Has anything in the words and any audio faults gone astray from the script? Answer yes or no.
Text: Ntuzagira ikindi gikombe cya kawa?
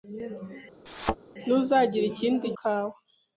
yes